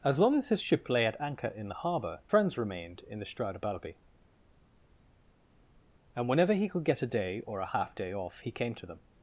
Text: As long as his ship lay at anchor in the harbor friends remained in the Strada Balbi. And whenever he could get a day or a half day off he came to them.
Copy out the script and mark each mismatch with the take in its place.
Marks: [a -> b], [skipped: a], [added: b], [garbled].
As long as his ship lay at anchor in the harbor friends remained in the Strada Balbi. And whenever he could get a day or a half day off he came to them.